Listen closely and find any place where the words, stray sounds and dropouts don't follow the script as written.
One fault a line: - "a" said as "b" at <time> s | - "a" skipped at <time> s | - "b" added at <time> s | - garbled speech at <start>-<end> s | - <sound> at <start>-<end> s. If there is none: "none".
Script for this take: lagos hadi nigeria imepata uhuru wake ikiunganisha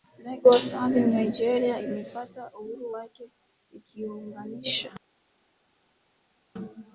none